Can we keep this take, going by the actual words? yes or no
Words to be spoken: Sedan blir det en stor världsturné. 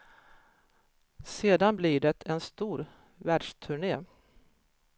yes